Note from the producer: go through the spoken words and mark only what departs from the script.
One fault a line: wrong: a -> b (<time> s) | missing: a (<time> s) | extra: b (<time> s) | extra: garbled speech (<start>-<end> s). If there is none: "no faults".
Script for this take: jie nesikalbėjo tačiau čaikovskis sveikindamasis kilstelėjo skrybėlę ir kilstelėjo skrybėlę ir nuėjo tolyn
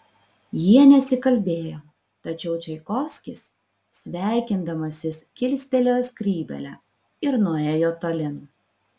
missing: kilstelėjo skrybėlę ir (7.4 s)